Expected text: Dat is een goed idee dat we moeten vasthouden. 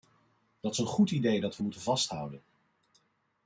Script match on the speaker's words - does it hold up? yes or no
yes